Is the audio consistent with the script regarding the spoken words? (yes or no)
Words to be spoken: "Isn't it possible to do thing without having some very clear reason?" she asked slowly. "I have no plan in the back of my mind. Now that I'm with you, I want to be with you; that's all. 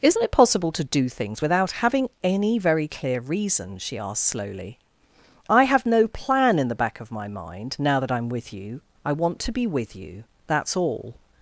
no